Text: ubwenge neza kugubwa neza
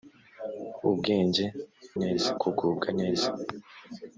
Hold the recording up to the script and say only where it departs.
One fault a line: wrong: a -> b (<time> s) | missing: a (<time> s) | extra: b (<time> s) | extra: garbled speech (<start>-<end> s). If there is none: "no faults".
no faults